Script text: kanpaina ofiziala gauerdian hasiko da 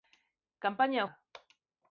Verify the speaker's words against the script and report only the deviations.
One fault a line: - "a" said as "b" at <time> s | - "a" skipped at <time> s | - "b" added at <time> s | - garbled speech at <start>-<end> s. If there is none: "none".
- "ofiziala gauerdian hasiko" skipped at 1.0 s